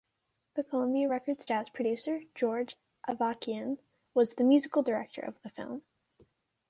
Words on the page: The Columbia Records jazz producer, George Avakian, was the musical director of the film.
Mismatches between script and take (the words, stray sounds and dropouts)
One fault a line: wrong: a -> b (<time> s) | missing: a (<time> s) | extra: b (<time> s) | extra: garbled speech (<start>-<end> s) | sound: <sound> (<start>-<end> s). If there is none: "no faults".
no faults